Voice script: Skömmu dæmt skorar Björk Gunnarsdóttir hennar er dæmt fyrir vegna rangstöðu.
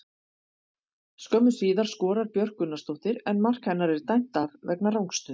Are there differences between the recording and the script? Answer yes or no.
yes